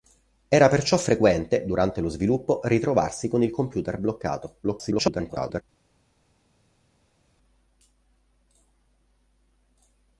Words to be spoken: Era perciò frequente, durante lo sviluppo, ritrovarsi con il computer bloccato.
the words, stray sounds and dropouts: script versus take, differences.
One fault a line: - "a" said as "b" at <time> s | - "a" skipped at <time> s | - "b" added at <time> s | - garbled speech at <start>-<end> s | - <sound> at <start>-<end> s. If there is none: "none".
- garbled speech at 4.6-5.6 s